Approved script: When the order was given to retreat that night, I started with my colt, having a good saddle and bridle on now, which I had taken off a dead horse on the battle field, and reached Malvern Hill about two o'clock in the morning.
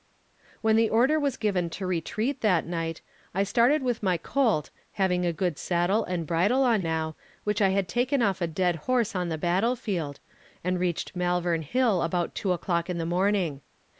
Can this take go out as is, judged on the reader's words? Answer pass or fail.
pass